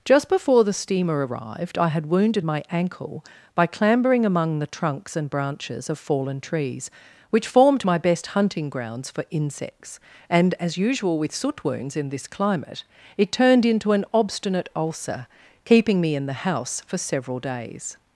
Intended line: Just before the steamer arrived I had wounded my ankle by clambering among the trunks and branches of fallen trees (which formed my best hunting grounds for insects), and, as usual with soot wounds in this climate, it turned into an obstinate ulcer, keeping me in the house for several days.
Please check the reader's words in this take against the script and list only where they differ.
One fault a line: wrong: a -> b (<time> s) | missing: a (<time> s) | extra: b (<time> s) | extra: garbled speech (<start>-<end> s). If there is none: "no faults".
no faults